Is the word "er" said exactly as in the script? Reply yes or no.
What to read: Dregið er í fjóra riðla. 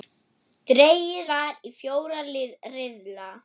no